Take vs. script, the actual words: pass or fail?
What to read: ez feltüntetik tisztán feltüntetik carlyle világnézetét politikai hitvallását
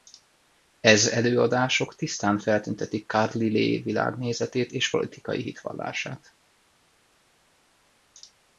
fail